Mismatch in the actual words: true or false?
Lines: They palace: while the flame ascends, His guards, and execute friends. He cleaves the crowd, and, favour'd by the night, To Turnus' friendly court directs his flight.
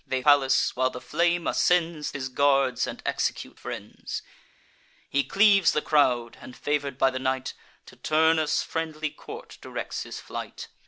false